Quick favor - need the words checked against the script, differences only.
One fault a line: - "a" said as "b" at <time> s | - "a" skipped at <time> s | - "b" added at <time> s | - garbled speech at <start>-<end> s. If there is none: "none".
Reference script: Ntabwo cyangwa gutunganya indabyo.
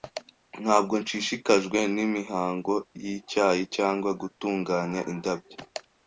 - "nshishikajwe nimihango yicyayi" added at 1.0 s